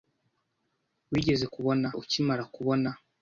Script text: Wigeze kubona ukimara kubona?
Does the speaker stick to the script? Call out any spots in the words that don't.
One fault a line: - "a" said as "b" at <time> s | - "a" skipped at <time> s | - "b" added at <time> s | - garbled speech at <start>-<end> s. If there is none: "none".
none